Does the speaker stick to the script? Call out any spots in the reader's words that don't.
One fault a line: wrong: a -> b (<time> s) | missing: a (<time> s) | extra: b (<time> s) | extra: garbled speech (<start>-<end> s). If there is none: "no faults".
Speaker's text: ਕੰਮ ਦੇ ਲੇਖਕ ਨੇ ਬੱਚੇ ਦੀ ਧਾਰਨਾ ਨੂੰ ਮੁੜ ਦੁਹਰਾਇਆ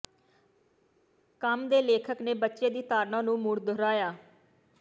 no faults